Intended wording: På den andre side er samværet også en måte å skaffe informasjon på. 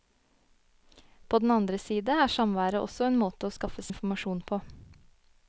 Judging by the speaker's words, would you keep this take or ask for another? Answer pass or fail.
pass